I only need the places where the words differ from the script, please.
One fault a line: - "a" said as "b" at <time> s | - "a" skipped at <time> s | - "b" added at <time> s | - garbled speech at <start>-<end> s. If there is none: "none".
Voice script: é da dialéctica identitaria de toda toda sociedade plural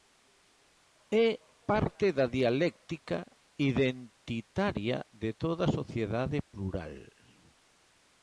- "parte" added at 1.7 s
- "toda" skipped at 5.7 s